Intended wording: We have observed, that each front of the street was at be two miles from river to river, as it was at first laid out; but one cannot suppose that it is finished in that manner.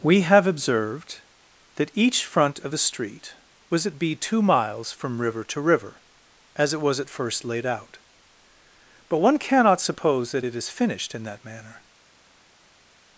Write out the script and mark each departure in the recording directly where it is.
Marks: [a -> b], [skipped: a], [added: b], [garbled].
We have observed, that each front of the street was at be two miles from river to river, as it was at first laid out; but one cannot suppose that it is finished in that manner.